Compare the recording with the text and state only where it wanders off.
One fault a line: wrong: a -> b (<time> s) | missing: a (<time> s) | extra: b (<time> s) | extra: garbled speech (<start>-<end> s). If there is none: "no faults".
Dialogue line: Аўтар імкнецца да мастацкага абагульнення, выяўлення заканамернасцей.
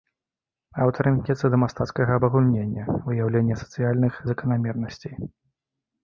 extra: сацыяльных (3.6 s)